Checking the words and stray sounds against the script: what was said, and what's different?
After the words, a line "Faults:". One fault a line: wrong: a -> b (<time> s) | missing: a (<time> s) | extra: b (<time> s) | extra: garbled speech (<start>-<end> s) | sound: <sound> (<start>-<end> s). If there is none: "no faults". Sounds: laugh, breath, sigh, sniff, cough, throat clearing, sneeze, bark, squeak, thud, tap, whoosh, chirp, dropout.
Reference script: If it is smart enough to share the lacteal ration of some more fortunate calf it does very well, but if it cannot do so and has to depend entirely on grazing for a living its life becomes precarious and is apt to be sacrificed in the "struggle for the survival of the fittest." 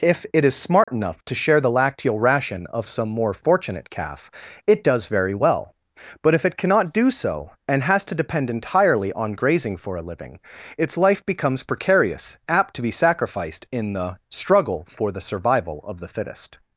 If it is smart enough to share the lacteal ration of some more fortunate calf it does very well, but if it cannot do so and has to depend entirely on grazing for a living its life becomes precarious apt to be sacrificed in the "struggle for the survival of the fittest."
Faults:
sound: dropout (0.8-0.9 s)
missing: and is (12.4 s)